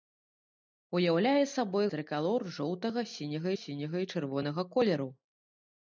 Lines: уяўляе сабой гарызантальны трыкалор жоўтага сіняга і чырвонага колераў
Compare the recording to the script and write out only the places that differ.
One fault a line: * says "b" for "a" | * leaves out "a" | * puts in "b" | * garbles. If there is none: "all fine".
* leaves out "гарызантальны"
* puts in "сіняга"